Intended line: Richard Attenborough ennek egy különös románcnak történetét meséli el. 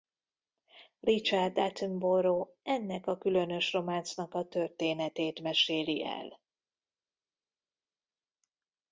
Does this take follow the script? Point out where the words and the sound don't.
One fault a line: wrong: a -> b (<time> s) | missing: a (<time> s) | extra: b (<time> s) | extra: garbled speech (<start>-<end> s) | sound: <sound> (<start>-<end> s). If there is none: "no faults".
wrong: egy -> a (3.1 s)
extra: a (4.3 s)